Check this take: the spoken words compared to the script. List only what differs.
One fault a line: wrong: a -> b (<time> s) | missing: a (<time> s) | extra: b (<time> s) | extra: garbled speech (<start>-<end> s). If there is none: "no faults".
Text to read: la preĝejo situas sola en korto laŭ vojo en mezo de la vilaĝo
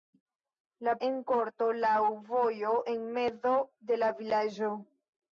missing: preĝejo situas sola (0.9 s)